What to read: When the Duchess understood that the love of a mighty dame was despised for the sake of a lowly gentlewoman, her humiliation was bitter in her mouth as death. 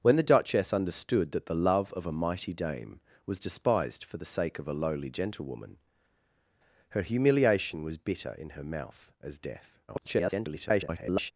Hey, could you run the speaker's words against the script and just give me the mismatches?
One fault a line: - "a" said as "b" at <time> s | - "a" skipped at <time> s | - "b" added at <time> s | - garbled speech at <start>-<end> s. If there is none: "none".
- garbled speech at 9.9-11.3 s